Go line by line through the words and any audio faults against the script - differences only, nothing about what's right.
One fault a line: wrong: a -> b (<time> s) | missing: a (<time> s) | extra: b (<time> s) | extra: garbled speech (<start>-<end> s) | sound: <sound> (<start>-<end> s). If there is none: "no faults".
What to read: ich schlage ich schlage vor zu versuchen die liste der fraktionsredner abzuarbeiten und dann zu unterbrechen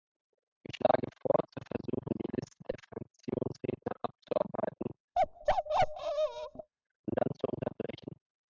missing: ich schlage (1.1 s)
sound: bark (5.2-6.7 s)